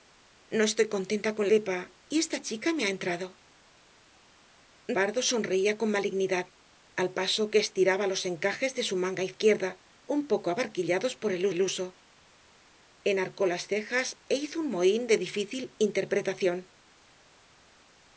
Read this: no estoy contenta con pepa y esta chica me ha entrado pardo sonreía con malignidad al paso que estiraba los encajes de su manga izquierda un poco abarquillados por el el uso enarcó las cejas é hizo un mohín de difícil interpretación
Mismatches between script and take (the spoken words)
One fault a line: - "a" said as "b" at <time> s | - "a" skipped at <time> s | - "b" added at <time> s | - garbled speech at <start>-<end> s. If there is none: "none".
none